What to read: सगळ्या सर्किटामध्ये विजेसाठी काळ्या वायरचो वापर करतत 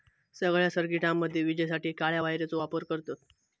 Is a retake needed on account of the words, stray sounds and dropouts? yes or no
no